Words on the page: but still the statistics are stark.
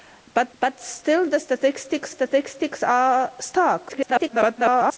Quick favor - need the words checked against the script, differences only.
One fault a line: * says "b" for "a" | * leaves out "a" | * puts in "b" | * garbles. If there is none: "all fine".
* puts in "but"
* puts in "statistics"
* garbles